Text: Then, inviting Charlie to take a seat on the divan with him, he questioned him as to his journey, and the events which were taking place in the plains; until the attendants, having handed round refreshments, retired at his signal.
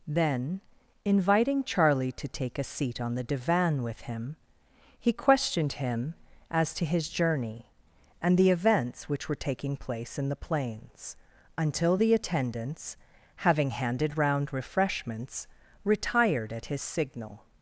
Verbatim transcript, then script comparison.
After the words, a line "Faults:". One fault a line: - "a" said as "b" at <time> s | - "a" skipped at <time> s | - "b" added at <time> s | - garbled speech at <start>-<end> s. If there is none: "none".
Then, inviting Charlie to take a seat on the divan with him, he questioned him as to his journey, and the events which were taking place in the plains; until the attendants, having handed round refreshments, retired at his signal.
Faults:
none